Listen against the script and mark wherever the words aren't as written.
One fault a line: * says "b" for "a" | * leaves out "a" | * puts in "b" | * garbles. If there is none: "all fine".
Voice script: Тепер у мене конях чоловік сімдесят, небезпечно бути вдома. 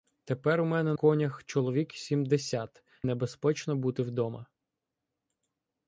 all fine